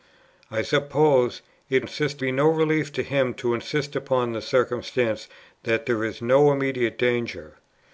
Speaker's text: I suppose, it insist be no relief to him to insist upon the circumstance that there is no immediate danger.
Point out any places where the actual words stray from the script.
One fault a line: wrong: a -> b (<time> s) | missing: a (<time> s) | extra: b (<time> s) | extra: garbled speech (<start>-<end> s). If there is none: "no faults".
no faults